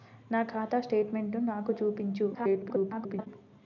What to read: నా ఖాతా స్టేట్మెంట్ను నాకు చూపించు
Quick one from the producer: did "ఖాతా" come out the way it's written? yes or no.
yes